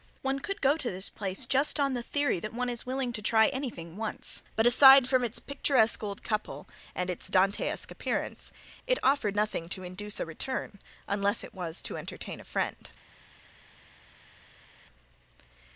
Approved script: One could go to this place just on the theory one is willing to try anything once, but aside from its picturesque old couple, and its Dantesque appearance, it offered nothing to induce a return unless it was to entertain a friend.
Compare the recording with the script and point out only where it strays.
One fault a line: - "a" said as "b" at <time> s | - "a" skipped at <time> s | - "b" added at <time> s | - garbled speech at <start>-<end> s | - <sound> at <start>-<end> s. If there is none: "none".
- "that" added at 2.4 s